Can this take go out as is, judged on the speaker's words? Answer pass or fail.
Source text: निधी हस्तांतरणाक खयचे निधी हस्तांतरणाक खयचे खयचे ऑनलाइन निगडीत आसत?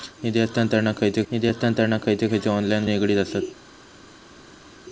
pass